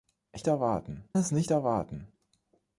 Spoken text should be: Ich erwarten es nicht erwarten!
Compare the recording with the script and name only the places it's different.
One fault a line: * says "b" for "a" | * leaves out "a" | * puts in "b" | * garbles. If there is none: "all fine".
all fine